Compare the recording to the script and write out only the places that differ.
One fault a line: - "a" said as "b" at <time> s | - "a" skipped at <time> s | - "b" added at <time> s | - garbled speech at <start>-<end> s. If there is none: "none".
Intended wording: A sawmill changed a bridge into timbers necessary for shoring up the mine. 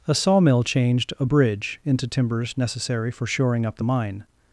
none